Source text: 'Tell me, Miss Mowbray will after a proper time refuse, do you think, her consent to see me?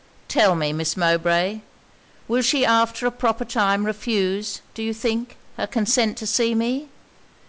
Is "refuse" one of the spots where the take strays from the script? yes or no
no